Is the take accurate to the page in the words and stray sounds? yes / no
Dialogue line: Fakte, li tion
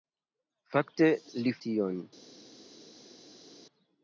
yes